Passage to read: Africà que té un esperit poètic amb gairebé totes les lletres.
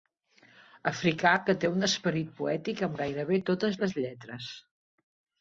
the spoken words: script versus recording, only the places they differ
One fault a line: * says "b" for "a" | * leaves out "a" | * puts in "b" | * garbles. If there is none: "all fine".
all fine